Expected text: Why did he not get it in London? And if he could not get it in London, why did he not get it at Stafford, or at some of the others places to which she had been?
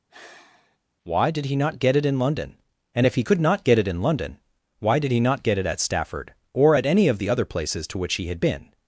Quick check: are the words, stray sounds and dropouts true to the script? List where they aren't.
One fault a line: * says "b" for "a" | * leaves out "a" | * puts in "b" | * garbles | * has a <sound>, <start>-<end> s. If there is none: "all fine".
* has a sigh, 0.1-0.8 s
* says "any" for "some"
* says "other" for "others"
* says "he" for "she"